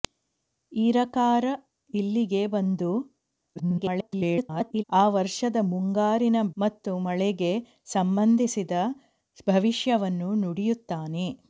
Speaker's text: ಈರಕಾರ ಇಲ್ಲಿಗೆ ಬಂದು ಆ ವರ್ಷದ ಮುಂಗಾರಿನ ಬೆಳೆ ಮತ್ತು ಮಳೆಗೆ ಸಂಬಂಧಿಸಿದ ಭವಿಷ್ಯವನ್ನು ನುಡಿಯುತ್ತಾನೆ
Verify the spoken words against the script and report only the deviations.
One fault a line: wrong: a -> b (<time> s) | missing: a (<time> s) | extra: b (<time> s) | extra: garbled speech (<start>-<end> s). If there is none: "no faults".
extra: garbled speech (3.6-4.8 s)
missing: ಬೆಳೆ (6.4 s)